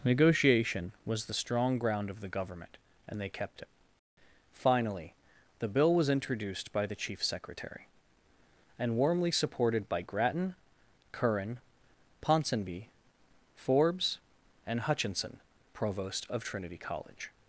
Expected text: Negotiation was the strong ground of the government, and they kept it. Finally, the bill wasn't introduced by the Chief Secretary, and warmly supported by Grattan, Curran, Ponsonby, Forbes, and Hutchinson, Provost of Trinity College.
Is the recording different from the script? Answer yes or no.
yes